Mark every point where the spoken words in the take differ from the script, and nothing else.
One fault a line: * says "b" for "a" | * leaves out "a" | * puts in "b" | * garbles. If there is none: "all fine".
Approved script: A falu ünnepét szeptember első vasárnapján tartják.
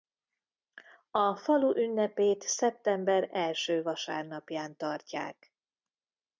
all fine